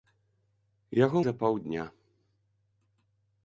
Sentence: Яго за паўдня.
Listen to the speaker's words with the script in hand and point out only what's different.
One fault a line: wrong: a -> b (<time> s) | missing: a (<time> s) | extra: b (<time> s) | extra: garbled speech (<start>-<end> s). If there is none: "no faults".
no faults